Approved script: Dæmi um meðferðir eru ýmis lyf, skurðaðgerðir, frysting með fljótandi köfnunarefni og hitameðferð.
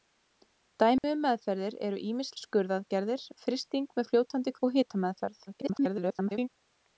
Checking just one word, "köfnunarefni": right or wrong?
wrong